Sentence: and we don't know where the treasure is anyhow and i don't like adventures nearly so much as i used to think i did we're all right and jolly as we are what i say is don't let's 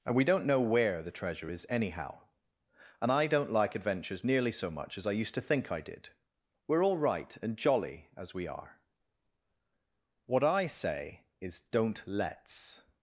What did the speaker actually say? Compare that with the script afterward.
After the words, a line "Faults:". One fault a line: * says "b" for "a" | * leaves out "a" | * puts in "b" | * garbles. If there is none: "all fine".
and we don't know where the treasure is anyhow and i don't like adventures nearly so much as i used to think i did we're all right and jolly as we are what i say is don't let's
Faults:
all fine